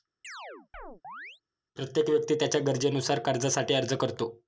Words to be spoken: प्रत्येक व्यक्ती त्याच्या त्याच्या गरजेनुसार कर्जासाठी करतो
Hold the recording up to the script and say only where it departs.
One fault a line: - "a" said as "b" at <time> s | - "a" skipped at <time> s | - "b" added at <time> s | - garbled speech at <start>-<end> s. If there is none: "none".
- "त्याच्या" skipped at 2.6 s
- "अर्ज" added at 3.7 s